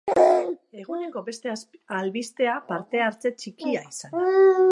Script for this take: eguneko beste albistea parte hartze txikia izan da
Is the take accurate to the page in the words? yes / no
yes